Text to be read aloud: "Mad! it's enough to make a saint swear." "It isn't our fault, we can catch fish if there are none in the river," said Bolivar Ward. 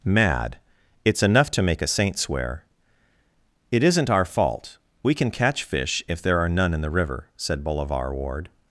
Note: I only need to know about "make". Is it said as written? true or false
true